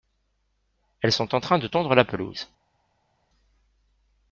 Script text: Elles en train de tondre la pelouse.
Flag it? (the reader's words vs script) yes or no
yes